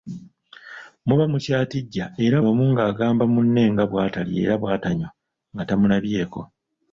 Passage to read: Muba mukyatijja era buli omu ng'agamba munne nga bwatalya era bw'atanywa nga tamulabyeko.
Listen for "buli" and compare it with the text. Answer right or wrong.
wrong